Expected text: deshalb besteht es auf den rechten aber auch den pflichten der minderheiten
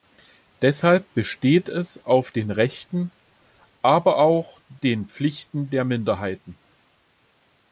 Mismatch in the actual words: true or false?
false